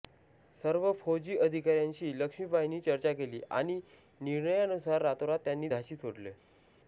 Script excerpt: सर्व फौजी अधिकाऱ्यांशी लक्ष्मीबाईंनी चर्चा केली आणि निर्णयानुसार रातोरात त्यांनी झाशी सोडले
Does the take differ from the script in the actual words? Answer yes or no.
no